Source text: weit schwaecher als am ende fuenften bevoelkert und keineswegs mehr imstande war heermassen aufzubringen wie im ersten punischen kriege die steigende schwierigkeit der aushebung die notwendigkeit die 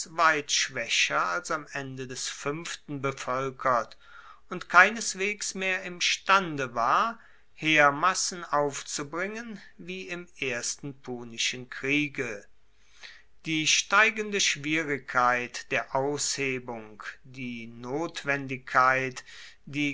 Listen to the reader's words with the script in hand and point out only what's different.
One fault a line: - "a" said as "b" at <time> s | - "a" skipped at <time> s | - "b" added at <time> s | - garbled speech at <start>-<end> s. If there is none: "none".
- "des" added at 2.0 s